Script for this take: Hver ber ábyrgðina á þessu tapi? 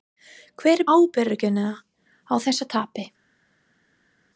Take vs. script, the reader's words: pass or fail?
fail